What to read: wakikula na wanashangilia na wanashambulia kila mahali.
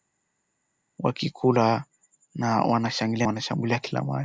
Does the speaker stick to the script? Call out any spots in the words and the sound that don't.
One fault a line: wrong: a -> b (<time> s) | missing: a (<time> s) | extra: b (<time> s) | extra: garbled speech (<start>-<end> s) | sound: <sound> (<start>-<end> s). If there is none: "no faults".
missing: na (3.3 s)